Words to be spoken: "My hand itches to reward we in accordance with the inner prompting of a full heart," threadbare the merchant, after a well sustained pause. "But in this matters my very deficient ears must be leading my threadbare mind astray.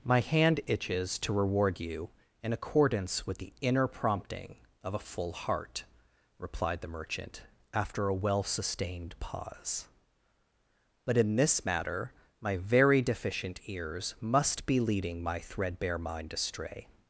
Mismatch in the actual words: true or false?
true